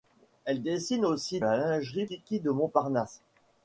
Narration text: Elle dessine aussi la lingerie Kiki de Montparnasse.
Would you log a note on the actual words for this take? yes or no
no